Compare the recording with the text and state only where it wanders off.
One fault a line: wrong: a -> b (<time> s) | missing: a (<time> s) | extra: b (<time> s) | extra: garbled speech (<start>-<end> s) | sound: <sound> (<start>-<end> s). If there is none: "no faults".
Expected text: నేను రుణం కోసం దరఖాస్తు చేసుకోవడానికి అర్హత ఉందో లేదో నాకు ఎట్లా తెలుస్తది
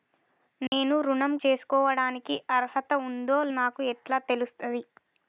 sound: dropout (0.7-0.7 s)
missing: కోసం దరఖాస్తు (1.3 s)
missing: లేదో (3.4 s)